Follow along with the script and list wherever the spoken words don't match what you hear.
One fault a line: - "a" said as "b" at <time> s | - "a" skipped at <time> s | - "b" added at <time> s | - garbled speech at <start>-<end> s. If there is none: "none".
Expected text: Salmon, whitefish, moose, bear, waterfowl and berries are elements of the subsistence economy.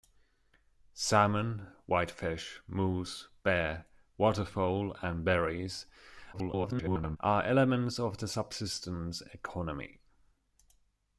- garbled speech at 6.3-7.2 s